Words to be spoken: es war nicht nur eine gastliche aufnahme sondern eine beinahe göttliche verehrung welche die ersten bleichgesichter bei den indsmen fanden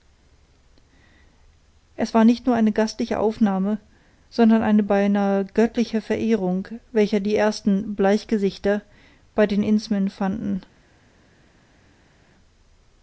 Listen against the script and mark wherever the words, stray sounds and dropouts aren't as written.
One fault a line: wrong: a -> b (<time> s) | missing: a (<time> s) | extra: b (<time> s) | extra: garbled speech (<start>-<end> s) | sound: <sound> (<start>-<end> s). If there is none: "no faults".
no faults